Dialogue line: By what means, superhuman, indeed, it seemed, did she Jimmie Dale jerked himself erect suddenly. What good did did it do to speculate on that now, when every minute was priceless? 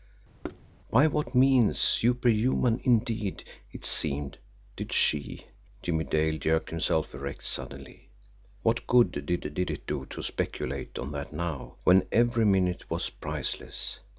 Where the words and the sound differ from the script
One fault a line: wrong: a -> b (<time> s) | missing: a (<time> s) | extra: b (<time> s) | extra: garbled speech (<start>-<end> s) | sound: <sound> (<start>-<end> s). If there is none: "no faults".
sound: thud (0.4-0.6 s)